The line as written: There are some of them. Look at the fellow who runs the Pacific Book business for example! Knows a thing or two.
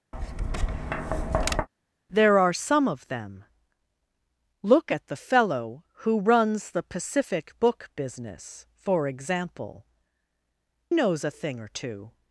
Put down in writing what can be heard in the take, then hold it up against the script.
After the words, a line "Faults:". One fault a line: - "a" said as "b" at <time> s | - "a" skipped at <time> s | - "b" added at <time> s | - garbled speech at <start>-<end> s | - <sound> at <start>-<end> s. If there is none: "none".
There are some of them. Look at the fellow who runs the Pacific Book business for example! Knows a thing or two.
Faults:
- tap at 0.1-1.7 s